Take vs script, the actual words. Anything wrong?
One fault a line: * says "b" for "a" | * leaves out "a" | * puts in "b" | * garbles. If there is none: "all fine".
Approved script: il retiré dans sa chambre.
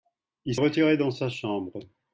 all fine